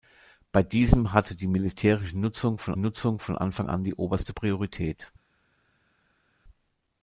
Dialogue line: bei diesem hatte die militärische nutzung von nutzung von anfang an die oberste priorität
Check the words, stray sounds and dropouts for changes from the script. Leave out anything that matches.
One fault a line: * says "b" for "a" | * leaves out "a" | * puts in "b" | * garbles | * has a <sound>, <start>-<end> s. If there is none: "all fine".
all fine